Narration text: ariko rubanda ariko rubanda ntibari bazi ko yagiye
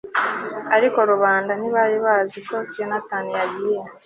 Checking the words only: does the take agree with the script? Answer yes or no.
no